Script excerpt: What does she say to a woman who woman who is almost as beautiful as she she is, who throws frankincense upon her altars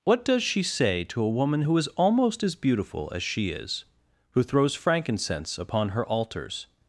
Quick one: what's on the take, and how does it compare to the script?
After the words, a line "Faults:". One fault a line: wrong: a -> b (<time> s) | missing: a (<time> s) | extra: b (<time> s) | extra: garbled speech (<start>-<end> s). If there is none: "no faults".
What does she say to a woman who is almost as beautiful as she is, who throws frankincense upon her altars
Faults:
missing: woman who (1.8 s)
missing: she (3.5 s)